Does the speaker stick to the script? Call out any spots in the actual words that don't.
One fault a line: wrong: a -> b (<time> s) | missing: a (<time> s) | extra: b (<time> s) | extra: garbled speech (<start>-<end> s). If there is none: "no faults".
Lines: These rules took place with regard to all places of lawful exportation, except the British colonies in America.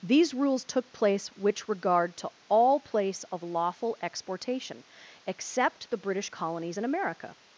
wrong: with -> which (1.3 s)
wrong: places -> place (2.8 s)